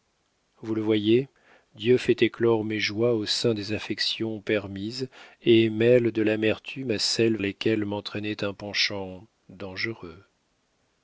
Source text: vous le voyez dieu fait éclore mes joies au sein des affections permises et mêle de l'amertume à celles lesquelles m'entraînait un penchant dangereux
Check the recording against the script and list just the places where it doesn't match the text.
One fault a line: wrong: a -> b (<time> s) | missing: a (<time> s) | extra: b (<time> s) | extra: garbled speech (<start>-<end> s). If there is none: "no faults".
no faults